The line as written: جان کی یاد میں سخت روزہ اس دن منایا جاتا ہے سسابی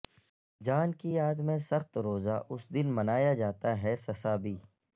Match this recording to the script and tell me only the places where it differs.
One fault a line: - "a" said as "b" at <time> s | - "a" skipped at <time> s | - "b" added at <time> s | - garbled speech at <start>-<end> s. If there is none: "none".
none